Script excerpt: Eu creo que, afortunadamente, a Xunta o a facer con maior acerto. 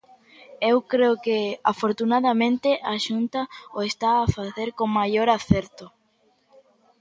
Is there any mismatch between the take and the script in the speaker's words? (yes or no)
yes